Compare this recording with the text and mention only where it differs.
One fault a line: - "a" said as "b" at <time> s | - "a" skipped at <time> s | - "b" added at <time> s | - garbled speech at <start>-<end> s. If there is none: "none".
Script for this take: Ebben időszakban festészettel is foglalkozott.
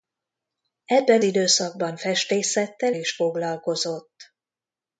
none